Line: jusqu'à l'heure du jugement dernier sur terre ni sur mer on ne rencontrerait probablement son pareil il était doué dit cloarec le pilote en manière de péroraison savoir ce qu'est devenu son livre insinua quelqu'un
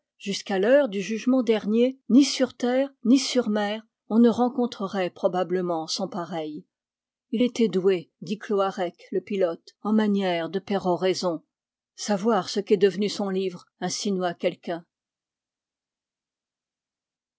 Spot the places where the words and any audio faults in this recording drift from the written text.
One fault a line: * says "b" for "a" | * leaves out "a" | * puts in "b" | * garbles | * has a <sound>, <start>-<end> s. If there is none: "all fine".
* puts in "ni"